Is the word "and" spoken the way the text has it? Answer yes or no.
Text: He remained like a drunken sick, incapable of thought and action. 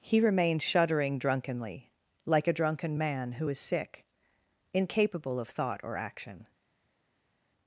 no